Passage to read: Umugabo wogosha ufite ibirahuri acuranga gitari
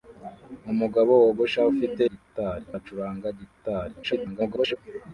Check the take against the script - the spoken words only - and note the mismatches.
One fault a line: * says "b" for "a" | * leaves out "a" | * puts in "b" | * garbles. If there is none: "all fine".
* says "gitari" for "ibirahuri"
* garbles